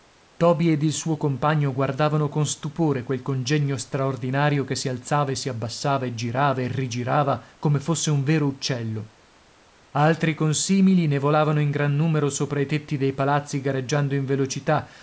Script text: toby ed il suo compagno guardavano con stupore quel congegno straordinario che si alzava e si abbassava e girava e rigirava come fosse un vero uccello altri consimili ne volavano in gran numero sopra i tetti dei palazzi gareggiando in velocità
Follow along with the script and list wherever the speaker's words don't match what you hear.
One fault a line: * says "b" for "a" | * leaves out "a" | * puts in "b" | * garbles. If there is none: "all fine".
all fine